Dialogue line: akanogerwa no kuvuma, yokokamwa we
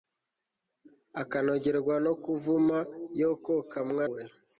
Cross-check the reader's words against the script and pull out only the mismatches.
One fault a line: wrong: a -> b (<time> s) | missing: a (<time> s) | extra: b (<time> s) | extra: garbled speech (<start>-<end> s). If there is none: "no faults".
no faults